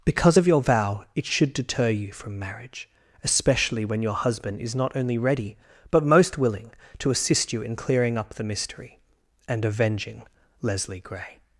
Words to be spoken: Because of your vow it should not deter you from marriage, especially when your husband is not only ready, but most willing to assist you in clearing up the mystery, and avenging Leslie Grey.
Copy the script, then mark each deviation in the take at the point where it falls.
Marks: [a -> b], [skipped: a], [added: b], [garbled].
Because of your vow it should [skipped: not] deter you from marriage, especially when your husband is not only ready, but most willing to assist you in clearing up the mystery, and avenging Leslie Grey.